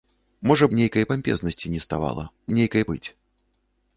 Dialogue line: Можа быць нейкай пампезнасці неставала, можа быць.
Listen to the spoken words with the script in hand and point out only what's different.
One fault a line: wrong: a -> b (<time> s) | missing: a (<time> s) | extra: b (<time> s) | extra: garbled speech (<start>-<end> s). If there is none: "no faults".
missing: быць (0.7 s)
wrong: можа -> нейкай (2.6 s)